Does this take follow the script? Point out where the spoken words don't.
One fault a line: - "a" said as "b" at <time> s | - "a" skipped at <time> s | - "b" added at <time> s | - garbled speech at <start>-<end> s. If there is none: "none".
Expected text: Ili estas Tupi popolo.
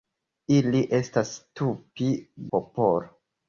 none